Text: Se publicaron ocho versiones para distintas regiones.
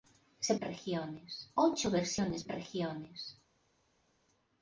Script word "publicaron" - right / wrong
wrong